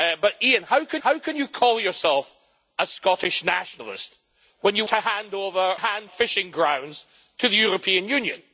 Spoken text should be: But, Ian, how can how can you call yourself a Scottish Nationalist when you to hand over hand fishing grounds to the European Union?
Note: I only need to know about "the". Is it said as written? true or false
true